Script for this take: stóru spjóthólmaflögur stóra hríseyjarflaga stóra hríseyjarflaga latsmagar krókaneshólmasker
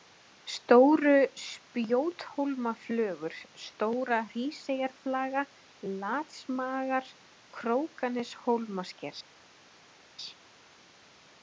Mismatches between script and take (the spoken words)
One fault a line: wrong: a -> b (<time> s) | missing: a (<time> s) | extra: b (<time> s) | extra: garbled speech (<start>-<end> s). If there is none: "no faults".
missing: stóra hríseyjarflaga (5.4 s)